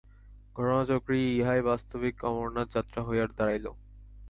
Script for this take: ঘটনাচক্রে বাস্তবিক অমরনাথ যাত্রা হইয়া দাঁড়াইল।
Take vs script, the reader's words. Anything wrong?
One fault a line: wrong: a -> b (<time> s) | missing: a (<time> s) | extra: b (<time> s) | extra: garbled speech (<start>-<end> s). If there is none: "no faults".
extra: ইহাই (1.3 s)